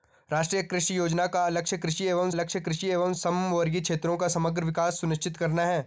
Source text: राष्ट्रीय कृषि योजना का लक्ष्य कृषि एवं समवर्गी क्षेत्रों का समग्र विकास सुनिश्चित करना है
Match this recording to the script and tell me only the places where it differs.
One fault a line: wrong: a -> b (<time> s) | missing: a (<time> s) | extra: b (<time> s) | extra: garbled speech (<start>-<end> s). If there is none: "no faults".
extra: लक्ष्य कृषि एवं (2.3 s)